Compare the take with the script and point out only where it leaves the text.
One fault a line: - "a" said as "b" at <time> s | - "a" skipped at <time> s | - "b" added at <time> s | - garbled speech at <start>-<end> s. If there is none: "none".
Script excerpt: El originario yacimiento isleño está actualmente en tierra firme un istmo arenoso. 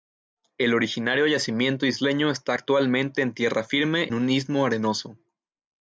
none